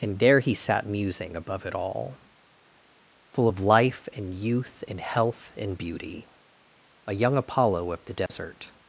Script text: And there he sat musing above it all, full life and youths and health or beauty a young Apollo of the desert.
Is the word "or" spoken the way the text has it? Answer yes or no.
no